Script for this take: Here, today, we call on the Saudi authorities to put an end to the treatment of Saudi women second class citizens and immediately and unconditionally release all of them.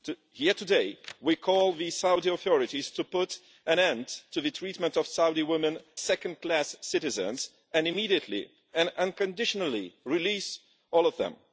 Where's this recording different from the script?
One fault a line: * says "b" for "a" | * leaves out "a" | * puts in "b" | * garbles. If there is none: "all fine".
all fine